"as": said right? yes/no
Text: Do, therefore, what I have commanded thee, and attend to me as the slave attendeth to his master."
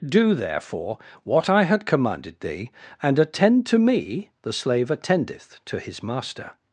no